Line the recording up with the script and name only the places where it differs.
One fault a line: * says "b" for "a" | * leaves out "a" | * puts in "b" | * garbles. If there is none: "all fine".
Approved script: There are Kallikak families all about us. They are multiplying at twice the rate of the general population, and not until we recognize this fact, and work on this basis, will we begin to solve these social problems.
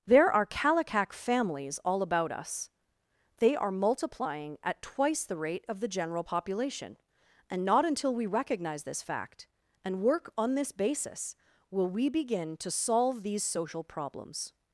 all fine